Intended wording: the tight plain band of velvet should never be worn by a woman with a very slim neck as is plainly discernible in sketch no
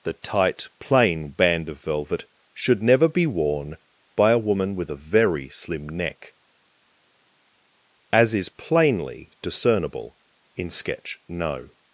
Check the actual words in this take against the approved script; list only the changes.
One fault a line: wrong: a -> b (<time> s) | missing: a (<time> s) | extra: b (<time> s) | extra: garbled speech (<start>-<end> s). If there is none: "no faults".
no faults